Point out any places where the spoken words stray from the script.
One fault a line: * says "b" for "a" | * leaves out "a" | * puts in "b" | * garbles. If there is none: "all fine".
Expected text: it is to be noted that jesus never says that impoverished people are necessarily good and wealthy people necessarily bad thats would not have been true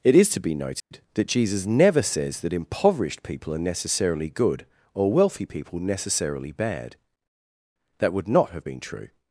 * says "or" for "and"
* says "that" for "thats"